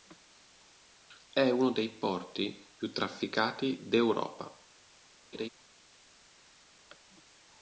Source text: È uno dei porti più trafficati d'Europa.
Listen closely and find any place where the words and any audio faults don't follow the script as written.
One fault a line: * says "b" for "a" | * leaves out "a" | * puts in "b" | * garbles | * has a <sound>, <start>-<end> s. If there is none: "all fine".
* has a laugh, 5.3-5.5 s